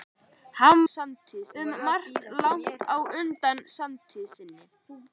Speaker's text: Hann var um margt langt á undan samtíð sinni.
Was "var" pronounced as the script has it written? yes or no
no